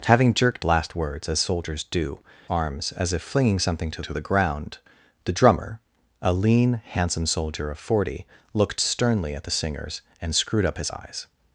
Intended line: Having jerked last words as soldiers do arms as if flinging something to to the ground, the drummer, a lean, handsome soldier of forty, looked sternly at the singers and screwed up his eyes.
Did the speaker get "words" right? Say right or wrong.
right